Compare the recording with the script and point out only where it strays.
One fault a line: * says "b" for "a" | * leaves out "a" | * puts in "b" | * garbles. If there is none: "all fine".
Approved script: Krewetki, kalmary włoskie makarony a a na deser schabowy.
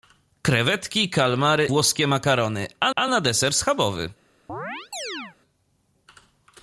all fine